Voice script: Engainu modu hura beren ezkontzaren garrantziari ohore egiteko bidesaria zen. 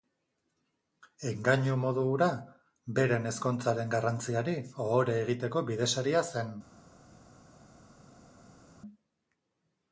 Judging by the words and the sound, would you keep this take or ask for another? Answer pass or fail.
pass